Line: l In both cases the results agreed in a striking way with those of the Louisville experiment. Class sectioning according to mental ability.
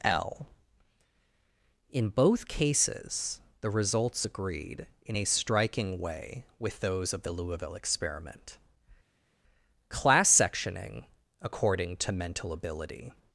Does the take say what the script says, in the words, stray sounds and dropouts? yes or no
yes